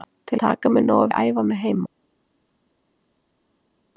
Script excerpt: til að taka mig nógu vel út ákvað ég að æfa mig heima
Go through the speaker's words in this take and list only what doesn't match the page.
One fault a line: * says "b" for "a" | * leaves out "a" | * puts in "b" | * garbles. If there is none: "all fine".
* leaves out "að"
* leaves out "vel út ákvað"